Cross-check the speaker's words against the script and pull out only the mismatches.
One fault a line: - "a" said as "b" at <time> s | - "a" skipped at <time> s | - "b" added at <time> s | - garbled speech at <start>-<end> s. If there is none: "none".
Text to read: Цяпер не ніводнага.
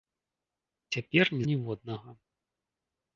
none